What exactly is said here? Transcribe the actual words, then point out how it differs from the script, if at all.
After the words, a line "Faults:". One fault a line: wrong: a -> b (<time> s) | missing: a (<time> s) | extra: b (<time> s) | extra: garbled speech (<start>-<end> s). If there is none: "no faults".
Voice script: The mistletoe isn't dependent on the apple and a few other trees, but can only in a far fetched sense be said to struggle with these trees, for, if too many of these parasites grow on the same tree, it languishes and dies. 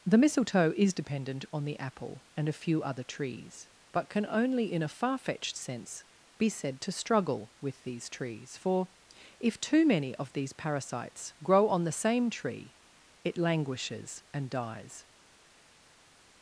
The mistletoe is dependent on the apple and a few other trees, but can only in a far fetched sense be said to struggle with these trees, for, if too many of these parasites grow on the same tree, it languishes and dies.
Faults:
wrong: isn't -> is (0.8 s)